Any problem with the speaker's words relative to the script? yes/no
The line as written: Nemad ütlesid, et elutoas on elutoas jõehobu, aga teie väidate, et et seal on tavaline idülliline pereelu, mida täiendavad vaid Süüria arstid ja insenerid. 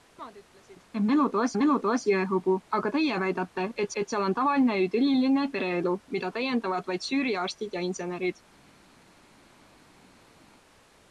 no